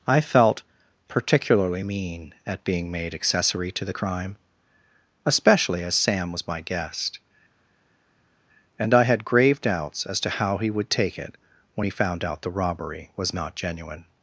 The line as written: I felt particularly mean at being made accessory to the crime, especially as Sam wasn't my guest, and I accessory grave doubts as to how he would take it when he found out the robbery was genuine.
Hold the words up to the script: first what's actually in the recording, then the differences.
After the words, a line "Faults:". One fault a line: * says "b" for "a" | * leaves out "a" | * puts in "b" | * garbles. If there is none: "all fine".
I felt particularly mean at being made accessory to the crime, especially as Sam was my guest, and I had grave doubts as to how he would take it when he found out the robbery was not genuine.
Faults:
* says "was" for "wasn't"
* says "had" for "accessory"
* puts in "not"